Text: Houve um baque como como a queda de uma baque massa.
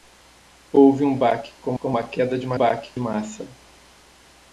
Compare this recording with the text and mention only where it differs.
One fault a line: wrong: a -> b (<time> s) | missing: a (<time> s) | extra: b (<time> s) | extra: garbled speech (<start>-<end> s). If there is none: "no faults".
no faults